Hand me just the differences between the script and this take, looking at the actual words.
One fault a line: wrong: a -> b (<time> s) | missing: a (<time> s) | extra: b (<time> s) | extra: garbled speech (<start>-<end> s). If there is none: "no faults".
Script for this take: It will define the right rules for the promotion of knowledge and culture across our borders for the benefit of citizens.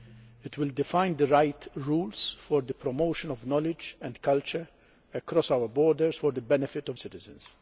no faults